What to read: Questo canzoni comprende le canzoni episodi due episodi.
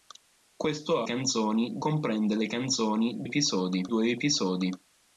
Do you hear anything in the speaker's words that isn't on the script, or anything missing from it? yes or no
no